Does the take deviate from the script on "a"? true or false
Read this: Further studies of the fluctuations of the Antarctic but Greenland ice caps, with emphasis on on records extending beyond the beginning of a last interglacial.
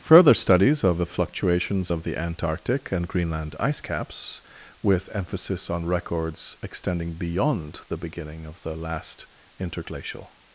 true